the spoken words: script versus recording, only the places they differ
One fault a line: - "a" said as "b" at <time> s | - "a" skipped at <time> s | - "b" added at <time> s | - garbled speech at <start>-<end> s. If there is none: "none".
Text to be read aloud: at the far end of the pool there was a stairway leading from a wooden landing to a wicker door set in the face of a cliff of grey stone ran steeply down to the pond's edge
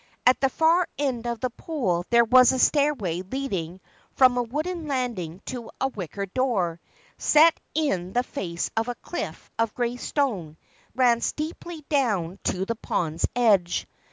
none